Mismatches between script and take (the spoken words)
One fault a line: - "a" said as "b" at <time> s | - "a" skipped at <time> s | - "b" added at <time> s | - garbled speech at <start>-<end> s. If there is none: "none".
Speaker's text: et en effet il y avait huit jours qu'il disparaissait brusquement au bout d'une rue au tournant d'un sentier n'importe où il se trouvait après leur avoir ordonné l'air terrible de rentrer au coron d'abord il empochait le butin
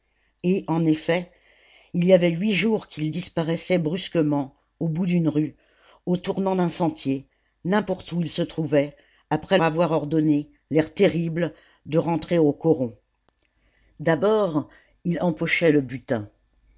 - "leur" skipped at 9.6 s